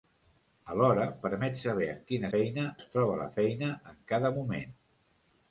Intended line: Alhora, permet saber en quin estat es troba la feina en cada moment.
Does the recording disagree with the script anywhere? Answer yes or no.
yes